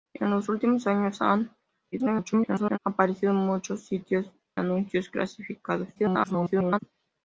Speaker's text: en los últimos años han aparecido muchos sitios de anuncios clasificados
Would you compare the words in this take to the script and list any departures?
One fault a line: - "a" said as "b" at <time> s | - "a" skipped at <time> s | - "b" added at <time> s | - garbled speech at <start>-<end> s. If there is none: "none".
- garbled speech at 1.9-2.8 s
- "de" skipped at 4.3 s
- garbled speech at 6.0-6.8 s